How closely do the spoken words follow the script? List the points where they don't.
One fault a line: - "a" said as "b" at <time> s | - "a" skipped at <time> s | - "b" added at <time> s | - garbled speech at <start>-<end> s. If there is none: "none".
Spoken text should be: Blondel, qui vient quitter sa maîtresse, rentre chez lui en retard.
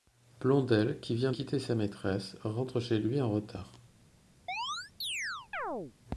none